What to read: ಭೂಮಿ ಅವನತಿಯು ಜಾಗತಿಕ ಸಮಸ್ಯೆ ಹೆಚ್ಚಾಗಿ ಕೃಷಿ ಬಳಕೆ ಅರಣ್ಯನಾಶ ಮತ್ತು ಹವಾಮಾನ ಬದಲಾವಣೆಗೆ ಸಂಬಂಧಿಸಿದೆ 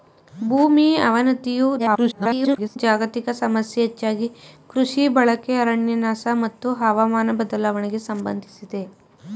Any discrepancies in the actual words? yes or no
yes